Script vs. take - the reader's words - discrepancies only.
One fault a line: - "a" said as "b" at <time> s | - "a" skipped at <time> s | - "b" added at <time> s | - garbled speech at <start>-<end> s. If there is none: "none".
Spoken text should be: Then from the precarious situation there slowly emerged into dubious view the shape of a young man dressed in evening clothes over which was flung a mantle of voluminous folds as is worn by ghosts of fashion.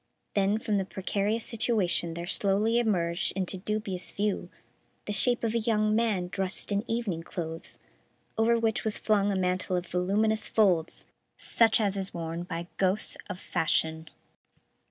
- "such" added at 11.4 s